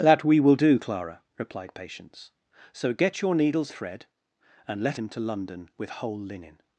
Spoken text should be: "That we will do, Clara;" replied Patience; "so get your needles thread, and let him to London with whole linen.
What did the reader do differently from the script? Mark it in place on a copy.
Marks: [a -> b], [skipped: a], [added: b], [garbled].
"That we will do, Clara;" replied Patience; "so get your needles thread, and let him to London with whole linen.